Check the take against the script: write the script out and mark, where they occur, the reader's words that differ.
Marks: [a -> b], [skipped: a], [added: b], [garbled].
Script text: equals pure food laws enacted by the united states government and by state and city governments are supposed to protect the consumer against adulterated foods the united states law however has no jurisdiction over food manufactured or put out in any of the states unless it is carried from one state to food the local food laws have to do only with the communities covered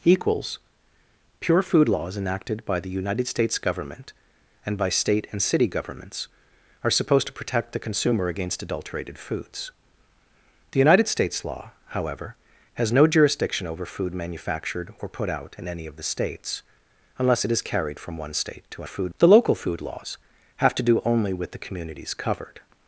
equals pure food laws enacted by the united states government and by state and city governments are supposed to protect the consumer against adulterated foods the united states law however has no jurisdiction over food manufactured or put out in any of the states unless it is carried from one state to food the local food laws have to do only with the communities covered